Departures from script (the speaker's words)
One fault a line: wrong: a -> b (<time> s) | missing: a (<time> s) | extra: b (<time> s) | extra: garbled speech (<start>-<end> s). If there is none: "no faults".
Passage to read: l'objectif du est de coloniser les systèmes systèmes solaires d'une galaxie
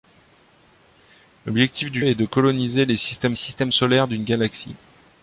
no faults